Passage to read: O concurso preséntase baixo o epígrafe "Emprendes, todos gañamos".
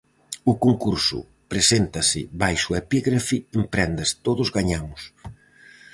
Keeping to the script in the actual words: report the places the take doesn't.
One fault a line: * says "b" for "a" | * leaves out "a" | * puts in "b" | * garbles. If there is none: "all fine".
all fine